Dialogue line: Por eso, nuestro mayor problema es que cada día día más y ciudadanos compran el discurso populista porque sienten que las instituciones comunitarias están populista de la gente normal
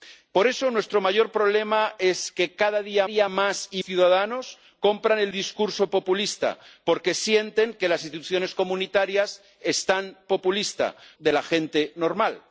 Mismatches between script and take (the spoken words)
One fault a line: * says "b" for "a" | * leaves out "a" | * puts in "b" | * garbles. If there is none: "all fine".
all fine